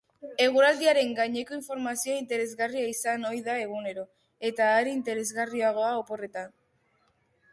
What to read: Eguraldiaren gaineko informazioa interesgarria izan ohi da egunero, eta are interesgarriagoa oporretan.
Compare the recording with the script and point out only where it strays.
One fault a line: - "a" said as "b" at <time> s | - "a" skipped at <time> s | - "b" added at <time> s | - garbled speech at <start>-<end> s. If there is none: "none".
none